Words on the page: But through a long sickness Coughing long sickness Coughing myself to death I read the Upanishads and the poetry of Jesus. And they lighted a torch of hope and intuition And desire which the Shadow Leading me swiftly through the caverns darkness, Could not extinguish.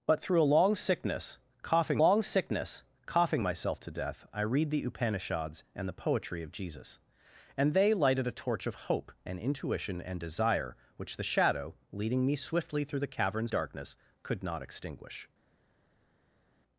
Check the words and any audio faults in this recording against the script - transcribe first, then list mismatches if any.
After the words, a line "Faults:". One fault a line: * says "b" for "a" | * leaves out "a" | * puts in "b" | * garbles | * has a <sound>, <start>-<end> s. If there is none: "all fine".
But through a long sickness Coughing long sickness Coughing myself to death I read the Upanishads and the poetry of Jesus. And they lighted a torch of hope and intuition And desire which the Shadow Leading me swiftly through the caverns darkness, Could not extinguish.
Faults:
all fine